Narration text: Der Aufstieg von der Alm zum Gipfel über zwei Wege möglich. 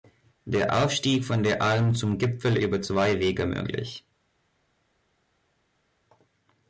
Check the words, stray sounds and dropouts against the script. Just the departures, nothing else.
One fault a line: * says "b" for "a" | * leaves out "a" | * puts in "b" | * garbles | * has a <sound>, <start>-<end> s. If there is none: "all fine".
all fine